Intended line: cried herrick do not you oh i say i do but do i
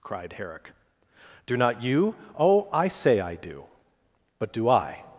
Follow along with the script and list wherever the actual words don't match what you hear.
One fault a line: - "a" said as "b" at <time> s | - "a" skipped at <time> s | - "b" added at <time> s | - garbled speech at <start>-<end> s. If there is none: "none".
none